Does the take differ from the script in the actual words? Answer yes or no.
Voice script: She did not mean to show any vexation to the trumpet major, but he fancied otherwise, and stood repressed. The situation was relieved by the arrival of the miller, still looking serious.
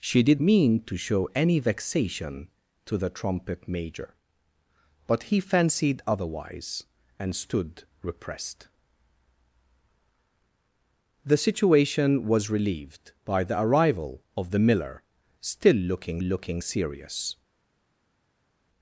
yes